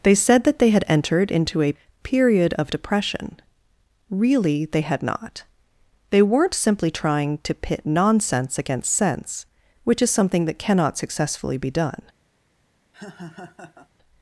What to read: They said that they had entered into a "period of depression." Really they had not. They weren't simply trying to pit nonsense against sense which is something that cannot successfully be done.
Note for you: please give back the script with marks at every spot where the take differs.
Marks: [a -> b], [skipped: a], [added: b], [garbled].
They said that they had entered into a "period of depression." Really they had not. They weren't simply trying to pit nonsense against sense which is something that cannot successfully be done.